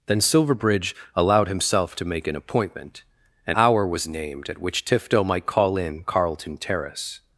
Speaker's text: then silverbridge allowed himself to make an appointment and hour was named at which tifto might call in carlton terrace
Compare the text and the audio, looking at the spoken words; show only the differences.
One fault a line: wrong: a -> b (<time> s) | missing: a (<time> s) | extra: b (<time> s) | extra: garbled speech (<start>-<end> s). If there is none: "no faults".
no faults